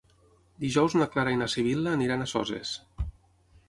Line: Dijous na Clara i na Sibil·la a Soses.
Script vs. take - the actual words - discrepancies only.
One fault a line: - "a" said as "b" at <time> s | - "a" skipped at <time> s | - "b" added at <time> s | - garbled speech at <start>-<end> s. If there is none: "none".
- "aniran" added at 2.0 s